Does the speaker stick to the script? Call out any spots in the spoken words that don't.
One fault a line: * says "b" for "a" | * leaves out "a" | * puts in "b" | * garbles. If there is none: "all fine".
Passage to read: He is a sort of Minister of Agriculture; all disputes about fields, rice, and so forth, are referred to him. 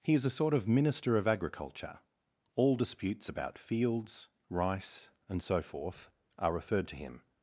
all fine